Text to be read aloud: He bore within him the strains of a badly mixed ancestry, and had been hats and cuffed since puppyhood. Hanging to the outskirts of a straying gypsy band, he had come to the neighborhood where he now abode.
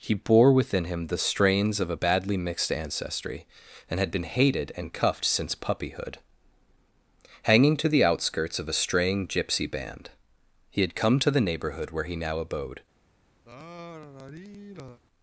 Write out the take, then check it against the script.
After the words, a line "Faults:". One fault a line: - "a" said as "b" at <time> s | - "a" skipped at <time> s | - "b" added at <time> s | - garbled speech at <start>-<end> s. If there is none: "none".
He bore within him the strains of a badly mixed ancestry, and had been hated and cuffed since puppyhood. Hanging to the outskirts of a straying gypsy band, he had come to the neighborhood where he now abode.
Faults:
- "hats" said as "hated" at 4.2 s